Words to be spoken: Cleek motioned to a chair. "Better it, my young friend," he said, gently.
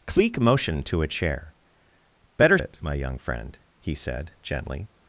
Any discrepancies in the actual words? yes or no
no